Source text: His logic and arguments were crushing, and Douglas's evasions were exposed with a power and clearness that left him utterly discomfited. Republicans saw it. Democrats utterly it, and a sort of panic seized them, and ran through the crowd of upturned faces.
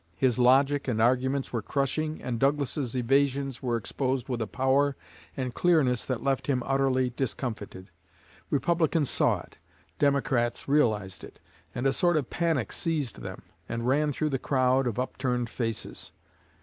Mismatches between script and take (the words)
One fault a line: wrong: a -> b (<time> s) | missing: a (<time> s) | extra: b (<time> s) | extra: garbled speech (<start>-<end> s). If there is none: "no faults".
wrong: utterly -> realized (10.7 s)